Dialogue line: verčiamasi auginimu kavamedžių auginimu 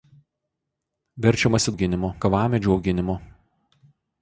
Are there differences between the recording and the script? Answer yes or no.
no